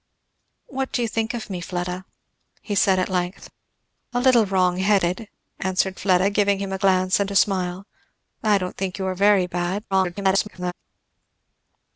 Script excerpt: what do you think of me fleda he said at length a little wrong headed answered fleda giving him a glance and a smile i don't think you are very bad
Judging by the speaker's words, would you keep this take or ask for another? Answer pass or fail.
fail